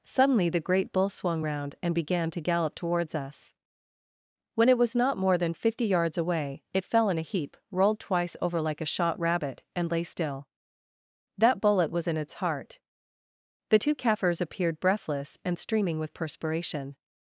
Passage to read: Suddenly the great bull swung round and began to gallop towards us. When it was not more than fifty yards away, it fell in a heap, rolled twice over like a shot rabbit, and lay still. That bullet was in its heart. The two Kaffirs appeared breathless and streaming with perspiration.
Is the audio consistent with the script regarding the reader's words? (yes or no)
yes